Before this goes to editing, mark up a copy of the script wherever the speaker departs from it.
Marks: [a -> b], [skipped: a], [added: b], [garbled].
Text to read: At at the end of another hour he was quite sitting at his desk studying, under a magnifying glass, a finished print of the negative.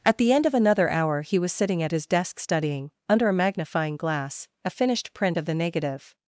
At [skipped: at] the end of another hour he was [skipped: quite] sitting at his desk studying, under a magnifying glass, a finished print of the negative.